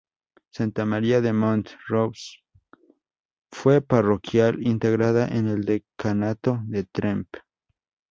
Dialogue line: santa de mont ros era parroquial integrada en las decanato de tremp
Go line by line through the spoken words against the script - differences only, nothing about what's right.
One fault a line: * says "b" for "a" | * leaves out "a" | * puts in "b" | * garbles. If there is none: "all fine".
* puts in "maría"
* says "fue" for "era"
* says "el" for "las"